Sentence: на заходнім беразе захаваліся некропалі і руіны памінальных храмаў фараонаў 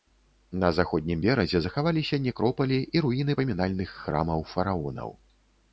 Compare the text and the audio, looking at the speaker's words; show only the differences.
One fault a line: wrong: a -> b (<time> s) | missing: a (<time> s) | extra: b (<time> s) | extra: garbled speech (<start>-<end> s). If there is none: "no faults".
no faults